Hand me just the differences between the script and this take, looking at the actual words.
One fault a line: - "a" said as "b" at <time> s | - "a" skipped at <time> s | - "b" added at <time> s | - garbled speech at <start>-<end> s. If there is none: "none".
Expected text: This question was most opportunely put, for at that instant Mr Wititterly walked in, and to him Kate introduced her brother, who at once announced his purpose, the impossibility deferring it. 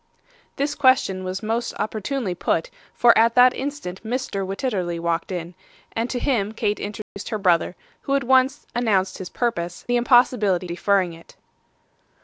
none